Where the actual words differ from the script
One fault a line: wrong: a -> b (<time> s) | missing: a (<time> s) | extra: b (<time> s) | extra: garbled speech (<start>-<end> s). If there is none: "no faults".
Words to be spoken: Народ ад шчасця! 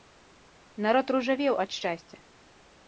extra: ружавеў (1.2 s)